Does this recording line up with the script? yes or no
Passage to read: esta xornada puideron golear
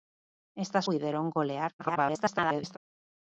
no